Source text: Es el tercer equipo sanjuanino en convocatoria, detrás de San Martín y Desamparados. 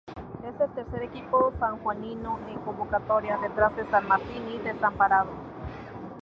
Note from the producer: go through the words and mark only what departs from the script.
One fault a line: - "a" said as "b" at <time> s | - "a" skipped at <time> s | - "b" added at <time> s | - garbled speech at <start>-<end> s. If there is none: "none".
none